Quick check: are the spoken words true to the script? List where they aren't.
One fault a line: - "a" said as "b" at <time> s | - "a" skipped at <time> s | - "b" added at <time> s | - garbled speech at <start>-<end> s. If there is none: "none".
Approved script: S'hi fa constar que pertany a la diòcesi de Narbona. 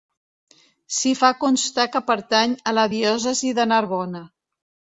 none